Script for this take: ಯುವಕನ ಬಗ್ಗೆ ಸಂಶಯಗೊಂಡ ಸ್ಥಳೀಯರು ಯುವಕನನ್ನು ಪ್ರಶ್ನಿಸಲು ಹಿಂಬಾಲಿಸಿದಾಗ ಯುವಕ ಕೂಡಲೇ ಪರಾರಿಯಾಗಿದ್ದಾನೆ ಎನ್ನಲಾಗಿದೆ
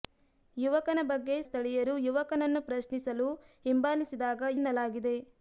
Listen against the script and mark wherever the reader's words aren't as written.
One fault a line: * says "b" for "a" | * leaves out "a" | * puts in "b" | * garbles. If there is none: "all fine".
* leaves out "ಸಂಶಯಗೊಂಡ"
* leaves out "ಯುವಕ ಕೂಡಲೇ ಪರಾರಿಯಾಗಿದ್ದಾನೆ"